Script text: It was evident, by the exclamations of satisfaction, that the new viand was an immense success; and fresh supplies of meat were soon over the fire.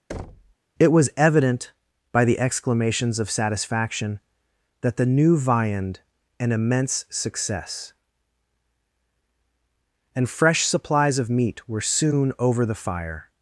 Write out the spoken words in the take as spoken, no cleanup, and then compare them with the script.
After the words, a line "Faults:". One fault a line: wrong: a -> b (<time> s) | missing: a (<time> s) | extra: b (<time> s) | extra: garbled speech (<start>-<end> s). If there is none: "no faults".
It was evident, by the exclamations of satisfaction, that the new viand an immense success; and fresh supplies of meat were soon over the fire.
Faults:
missing: was (6.0 s)